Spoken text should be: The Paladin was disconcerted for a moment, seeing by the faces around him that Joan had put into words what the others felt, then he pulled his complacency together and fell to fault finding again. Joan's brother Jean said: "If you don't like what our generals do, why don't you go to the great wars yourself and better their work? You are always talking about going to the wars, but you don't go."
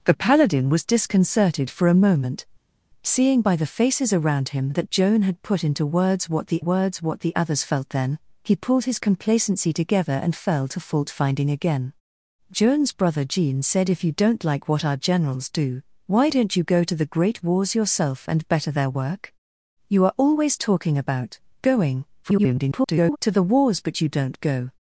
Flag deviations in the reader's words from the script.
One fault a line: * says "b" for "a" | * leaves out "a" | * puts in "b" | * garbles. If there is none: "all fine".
* puts in "words what the"
* garbles